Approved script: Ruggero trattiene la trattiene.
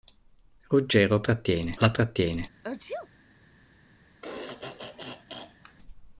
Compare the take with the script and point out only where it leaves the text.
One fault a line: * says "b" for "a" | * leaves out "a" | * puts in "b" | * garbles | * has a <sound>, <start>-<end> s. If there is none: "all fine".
* has a sneeze, 2.6-3.1 s
* has a throat clearing, 4.2-5.8 s